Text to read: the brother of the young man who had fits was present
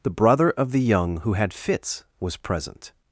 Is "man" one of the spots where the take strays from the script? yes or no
yes